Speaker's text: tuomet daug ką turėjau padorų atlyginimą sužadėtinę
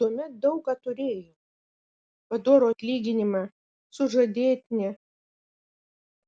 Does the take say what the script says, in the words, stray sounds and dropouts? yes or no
yes